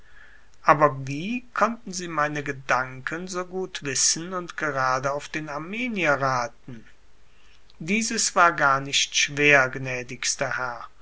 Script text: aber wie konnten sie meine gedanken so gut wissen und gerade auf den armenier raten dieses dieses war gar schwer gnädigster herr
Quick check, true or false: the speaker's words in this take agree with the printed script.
false